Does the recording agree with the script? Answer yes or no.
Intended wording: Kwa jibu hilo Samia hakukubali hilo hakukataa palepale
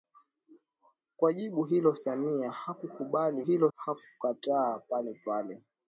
yes